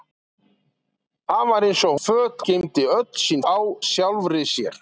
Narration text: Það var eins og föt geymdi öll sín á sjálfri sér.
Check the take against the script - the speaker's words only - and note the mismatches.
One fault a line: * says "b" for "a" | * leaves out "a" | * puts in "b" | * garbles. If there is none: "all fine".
all fine